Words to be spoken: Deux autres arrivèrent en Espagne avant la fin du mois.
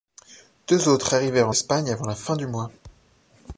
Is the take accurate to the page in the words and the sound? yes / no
no